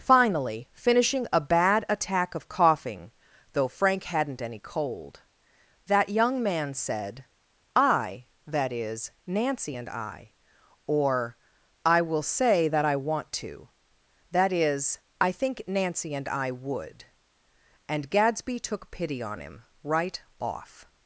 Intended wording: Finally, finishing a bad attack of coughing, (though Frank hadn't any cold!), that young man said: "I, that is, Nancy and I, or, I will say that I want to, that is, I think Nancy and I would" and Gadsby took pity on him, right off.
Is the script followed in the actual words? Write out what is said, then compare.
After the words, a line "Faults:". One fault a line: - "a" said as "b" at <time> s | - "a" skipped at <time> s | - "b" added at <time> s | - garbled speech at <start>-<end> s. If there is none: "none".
Finally, finishing a bad attack of coughing, (though Frank hadn't any cold!), that young man said: "I, that is, Nancy and I, or, I will say that I want to, that is, I think Nancy and I would" and Gadsby took pity on him, right off.
Faults:
none